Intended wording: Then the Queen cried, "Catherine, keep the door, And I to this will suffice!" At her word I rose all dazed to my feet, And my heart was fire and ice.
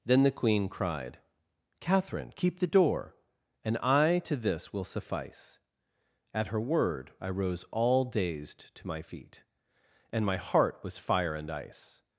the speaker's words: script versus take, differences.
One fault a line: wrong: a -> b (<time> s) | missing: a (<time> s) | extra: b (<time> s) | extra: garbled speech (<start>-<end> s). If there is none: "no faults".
no faults